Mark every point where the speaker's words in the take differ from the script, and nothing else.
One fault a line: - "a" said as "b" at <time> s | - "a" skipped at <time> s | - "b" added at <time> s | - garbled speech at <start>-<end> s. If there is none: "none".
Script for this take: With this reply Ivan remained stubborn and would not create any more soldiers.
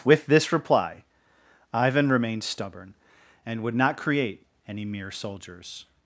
- "more" said as "mere" at 4.8 s